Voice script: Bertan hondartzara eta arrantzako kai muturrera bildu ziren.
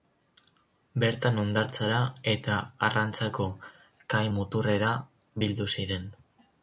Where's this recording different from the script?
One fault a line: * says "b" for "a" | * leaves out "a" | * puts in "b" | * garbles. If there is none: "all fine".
all fine